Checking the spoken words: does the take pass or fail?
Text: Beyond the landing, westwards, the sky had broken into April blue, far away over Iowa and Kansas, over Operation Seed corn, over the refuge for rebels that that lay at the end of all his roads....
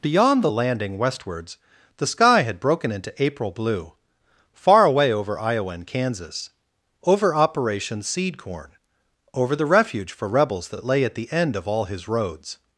pass